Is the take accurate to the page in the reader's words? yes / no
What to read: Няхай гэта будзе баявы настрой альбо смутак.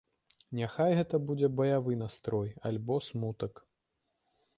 yes